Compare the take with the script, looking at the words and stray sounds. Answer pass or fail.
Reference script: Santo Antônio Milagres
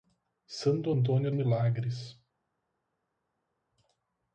pass